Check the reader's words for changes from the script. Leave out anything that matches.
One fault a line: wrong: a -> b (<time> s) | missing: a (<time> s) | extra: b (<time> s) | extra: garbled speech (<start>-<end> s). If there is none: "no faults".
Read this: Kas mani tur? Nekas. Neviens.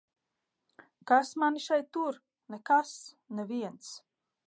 extra: šeit (1.7 s)